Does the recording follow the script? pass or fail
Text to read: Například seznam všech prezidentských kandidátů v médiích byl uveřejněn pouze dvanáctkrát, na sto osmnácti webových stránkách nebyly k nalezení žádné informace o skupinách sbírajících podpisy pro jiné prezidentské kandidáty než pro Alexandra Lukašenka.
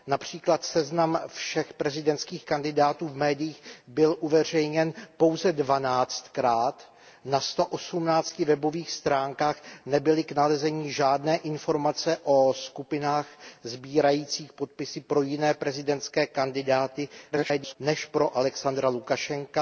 fail